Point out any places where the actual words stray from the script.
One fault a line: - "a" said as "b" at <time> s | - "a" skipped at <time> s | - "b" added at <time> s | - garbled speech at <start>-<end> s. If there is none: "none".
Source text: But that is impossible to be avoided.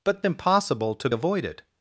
- "that is" skipped at 0.2 s
- "be" skipped at 1.1 s